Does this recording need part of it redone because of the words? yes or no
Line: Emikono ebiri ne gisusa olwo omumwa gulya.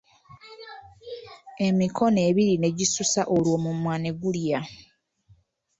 yes